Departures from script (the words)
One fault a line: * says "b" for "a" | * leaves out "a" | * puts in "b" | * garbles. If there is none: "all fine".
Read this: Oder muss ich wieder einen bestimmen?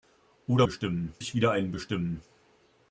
* says "bestimmen" for "muss"